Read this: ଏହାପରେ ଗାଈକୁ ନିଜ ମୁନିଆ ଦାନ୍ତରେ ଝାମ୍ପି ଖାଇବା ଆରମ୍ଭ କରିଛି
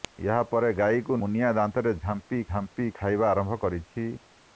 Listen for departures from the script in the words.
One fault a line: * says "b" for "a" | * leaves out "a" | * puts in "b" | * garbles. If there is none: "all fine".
* leaves out "ନିଜ"
* puts in "ଝାମ୍ପି"